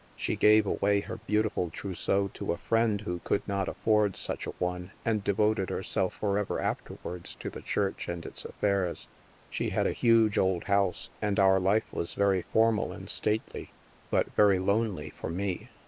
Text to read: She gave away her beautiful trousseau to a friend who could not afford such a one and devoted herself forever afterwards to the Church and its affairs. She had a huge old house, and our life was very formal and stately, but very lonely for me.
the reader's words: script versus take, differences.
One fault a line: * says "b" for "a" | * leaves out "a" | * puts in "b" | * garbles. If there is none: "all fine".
all fine